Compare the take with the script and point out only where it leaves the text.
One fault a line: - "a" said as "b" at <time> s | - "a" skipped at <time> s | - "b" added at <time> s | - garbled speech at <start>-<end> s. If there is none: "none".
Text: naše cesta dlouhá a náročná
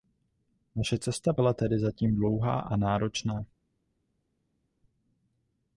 - "byla tedy zatím" added at 1.3 s